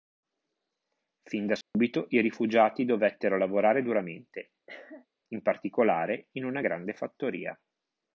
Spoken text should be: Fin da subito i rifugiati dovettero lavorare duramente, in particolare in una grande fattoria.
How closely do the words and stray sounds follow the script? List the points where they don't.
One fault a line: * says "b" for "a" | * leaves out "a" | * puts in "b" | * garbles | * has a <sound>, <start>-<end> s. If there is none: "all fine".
* has a dropout, 1.6-1.7 s
* has a cough, 4.7-5.1 s